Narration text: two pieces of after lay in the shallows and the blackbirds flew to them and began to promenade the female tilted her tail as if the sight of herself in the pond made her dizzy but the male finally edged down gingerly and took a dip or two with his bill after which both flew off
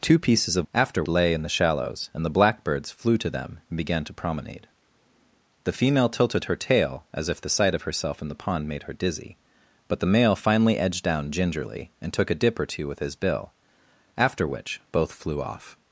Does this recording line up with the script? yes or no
yes